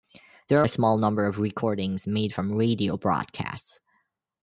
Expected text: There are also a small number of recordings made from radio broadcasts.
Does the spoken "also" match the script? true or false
false